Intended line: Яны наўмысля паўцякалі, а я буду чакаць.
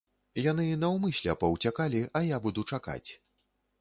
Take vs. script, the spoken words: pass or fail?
pass